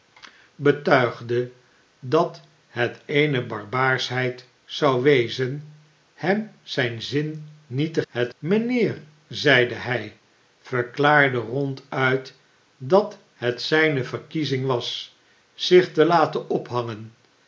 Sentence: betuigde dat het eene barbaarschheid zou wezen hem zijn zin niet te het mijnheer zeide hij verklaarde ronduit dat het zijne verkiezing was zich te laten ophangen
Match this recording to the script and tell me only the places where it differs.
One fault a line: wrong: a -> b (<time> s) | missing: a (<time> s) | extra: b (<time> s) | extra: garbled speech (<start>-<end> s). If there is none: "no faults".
no faults